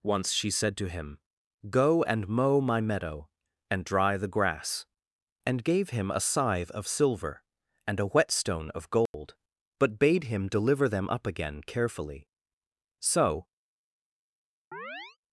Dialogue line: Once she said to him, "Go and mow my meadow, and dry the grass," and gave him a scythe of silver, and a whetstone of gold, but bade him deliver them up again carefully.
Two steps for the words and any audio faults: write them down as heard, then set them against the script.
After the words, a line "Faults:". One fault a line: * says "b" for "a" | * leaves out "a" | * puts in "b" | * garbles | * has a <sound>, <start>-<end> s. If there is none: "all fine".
Once she said to him, "Go and mow my meadow, and dry the grass," and gave him a scythe of silver, and a whetstone of gold, but bade him deliver them up again carefully. So
Faults:
* has a dropout, 9.1-9.1 s
* puts in "So"
* has a chirp, 14.7-15.2 s